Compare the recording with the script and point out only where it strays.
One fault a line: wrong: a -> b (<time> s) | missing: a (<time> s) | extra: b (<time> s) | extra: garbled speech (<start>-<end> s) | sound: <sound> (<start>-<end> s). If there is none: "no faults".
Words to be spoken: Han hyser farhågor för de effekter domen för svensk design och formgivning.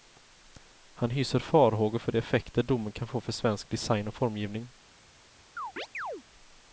extra: kan få (2.9 s)
sound: chirp (5.6-6.2 s)